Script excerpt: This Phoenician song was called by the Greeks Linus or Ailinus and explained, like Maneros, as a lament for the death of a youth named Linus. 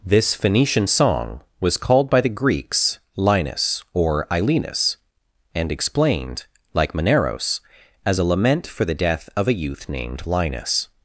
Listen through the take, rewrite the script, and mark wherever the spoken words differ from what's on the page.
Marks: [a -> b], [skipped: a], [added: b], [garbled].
This Phoenician song was called by the Greeks Linus or Ailinus and explained, like Maneros, as a lament for the death of a youth named Linus.